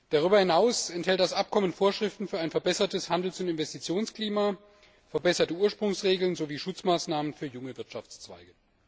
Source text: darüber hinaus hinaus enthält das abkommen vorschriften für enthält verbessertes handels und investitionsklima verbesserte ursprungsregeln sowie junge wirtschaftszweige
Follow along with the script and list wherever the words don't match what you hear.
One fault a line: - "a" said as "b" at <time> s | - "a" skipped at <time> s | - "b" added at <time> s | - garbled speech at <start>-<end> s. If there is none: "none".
- "hinaus" skipped at 0.9 s
- "enthält" said as "ein" at 2.4 s
- "schutzmaßnahmen für" added at 6.6 s